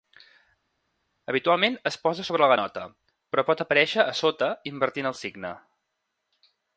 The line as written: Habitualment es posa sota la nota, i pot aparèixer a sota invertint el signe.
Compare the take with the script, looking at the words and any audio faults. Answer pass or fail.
fail